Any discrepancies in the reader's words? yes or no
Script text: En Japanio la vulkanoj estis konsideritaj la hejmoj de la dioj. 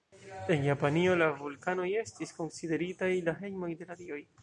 no